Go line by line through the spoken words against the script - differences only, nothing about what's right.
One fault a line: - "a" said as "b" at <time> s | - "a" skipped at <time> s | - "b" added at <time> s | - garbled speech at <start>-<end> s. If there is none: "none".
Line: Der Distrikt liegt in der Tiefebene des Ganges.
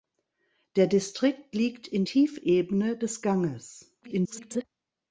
- "der" skipped at 2.0 s
- garbled speech at 4.0-4.6 s